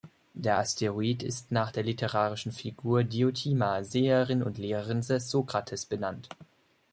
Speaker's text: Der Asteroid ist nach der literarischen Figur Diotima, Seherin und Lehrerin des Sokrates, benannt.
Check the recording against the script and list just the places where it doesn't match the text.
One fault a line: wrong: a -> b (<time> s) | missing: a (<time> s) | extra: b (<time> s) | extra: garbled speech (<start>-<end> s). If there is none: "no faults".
no faults